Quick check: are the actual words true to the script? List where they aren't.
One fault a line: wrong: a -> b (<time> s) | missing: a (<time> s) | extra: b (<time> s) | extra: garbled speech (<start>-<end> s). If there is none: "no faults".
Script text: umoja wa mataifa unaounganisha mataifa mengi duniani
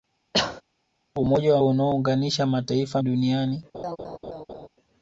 missing: mataifa (1.6 s)
missing: mengi (3.0 s)